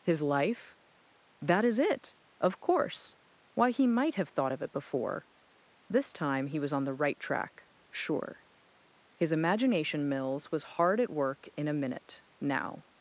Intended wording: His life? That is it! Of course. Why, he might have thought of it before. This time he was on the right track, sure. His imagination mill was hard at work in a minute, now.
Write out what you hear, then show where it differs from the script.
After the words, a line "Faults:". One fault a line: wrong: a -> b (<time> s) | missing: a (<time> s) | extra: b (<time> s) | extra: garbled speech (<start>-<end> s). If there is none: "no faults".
His life? That is it! Of course. Why, he might have thought of it before. This time he was on the right track, sure. His imagination mills was hard at work in a minute, now.
Faults:
wrong: mill -> mills (10.1 s)